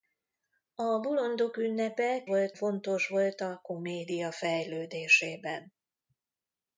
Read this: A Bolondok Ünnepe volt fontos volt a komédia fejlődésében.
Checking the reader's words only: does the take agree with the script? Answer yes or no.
yes